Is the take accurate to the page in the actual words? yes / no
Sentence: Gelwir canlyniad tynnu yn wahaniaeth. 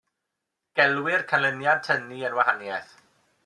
yes